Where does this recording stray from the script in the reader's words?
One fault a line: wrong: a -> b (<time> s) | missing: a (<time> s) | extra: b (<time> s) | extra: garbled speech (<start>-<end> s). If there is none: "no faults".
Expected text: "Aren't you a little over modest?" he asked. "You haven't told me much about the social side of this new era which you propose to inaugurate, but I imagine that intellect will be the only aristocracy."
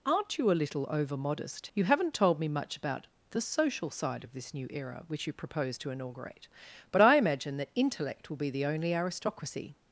missing: he asked (1.7 s)